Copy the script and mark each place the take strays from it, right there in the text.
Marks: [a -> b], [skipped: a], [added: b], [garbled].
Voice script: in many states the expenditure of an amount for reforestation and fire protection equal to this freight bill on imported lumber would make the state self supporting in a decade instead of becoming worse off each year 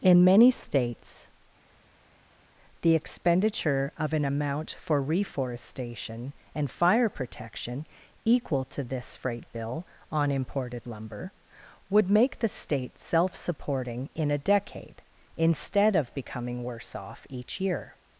in many states the expenditure of an amount for reforestation and fire protection equal to this freight bill on imported lumber would make the state self supporting in a decade instead of becoming worse off each year